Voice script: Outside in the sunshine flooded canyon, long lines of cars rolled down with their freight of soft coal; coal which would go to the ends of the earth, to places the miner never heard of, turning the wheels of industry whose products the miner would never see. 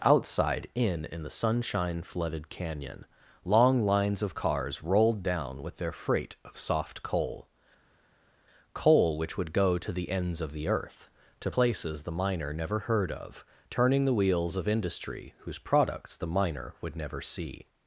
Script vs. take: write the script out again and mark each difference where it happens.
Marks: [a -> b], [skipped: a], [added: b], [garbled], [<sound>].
Outside in [added: in] the sunshine flooded canyon, long lines of cars rolled down with their freight of soft coal; coal which would go to the ends of the earth, to places the miner never heard of, turning the wheels of industry whose products the miner would never see.